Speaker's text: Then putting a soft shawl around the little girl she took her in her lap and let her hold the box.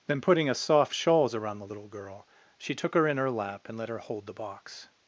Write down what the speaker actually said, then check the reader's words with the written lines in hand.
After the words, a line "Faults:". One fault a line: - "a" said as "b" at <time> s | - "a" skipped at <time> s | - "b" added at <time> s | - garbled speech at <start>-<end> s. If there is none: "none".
Then putting a soft shawls around the little girl she took her in her lap and let her hold the box.
Faults:
- "shawl" said as "shawls" at 0.9 s